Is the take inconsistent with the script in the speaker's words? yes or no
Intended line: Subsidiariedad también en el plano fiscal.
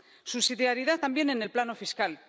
no